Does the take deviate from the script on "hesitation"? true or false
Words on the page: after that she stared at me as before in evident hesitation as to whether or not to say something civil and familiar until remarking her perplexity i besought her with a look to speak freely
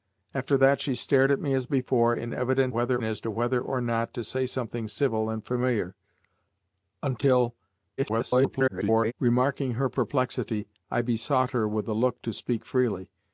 true